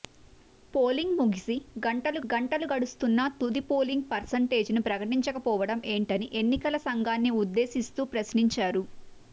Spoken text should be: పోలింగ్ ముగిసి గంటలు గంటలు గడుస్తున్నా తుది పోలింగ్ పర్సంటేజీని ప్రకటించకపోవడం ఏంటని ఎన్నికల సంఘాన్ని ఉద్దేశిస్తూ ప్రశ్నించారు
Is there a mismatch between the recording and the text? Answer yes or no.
no